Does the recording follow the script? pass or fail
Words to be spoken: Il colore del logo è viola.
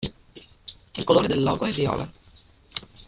pass